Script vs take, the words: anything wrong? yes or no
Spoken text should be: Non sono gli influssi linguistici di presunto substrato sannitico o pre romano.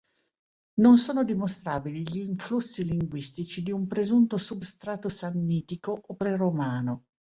yes